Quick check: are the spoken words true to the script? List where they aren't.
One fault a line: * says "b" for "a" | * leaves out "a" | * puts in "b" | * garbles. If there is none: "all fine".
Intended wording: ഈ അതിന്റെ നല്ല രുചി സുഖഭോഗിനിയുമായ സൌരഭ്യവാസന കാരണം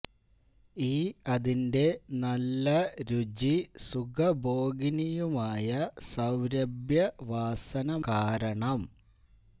all fine